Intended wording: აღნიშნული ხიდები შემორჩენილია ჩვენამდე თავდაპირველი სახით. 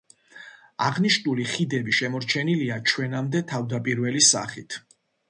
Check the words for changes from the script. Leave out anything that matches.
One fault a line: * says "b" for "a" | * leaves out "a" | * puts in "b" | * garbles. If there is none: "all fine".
all fine